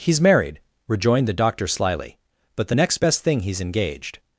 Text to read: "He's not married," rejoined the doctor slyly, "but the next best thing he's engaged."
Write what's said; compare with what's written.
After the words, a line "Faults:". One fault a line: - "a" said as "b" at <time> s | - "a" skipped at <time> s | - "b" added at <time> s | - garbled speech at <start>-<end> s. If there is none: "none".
"He's married," rejoined the doctor slyly, "but the next best thing he's engaged."
Faults:
- "not" skipped at 0.2 s